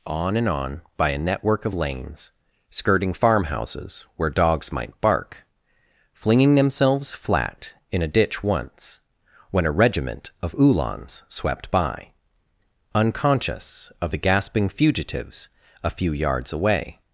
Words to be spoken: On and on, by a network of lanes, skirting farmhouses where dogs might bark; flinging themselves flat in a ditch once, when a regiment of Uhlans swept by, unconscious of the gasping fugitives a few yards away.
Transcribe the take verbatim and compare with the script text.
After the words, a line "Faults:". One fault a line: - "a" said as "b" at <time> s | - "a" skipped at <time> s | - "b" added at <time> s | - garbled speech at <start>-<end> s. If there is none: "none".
On and on, by a network of lanes, skirting farmhouses where dogs might bark; flinging themselves flat in a ditch once, when a regiment of Uhlans swept by, unconscious of the gasping fugitives a few yards away.
Faults:
none